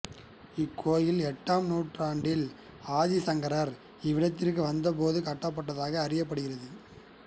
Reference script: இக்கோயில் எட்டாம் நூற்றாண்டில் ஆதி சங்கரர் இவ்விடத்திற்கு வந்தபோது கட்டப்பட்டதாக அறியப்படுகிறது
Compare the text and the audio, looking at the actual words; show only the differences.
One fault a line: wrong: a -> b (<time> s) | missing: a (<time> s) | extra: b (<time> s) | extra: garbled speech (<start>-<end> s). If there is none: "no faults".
no faults